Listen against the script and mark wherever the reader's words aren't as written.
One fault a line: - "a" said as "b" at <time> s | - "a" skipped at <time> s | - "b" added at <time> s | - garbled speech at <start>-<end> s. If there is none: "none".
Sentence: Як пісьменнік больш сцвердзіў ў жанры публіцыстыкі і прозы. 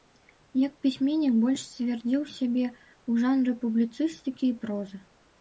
- "сябе" added at 2.4 s